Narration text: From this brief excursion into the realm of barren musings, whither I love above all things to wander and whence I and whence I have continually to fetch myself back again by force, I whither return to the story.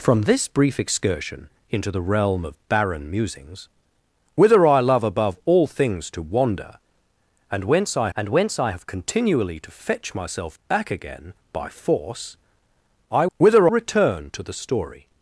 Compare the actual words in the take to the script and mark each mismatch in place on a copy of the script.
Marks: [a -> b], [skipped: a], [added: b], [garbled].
From this brief excursion into the realm of barren musings, whither I love above all things to wander and whence I and whence I have continually to fetch myself back again by force, I whither return to the story.